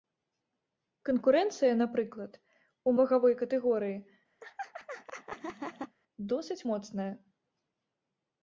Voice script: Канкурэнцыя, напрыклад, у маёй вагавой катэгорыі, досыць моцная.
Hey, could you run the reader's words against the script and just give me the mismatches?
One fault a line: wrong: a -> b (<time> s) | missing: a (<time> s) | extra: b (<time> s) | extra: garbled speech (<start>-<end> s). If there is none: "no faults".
missing: маёй (3.0 s)